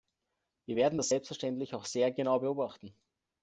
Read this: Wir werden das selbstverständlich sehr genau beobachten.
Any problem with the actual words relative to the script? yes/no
yes